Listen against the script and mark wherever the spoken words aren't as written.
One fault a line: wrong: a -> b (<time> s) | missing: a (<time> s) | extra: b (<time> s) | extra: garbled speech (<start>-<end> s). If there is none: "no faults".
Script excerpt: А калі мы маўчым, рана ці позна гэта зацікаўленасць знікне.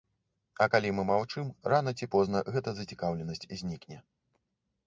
no faults